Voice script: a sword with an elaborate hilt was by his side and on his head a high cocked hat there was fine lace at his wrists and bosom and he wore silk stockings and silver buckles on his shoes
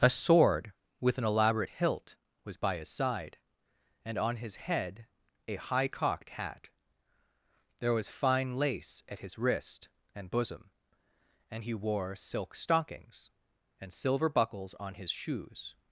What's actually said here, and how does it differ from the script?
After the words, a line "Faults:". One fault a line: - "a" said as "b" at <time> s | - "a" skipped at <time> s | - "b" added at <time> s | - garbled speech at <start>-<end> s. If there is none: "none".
a sword with an elaborate hilt was by his side and on his head a high cocked hat there was fine lace at his wrist and bosom and he wore silk stockings and silver buckles on his shoes
Faults:
- "wrists" said as "wrist" at 9.4 s